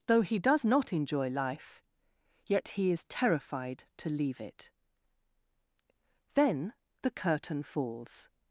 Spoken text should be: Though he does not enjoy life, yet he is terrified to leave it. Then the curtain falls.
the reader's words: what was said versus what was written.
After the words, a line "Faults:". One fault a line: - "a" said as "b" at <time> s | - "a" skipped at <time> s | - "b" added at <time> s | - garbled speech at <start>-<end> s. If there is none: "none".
Though he does not enjoy life, yet he is terrified to leave it. Then the curtain falls.
Faults:
none